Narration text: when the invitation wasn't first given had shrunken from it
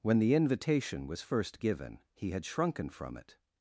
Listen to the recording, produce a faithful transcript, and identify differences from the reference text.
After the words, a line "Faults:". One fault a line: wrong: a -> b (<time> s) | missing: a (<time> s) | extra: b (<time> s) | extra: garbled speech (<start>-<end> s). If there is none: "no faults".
when the invitation was first given he had shrunken from it
Faults:
wrong: wasn't -> was (1.1 s)
extra: he (2.1 s)